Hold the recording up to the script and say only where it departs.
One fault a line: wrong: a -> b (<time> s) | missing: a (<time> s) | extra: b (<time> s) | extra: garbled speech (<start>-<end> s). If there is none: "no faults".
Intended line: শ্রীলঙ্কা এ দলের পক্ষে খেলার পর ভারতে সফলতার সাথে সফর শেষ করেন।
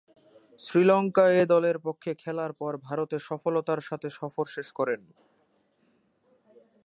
no faults